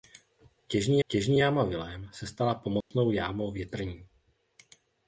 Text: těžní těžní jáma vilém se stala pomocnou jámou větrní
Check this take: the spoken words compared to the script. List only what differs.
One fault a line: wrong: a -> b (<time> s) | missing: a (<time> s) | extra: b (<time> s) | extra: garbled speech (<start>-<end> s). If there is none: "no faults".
no faults